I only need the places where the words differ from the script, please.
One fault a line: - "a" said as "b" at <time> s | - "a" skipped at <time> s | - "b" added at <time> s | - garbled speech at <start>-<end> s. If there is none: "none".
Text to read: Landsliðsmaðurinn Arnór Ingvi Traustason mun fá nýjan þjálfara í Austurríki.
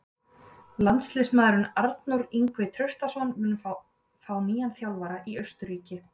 none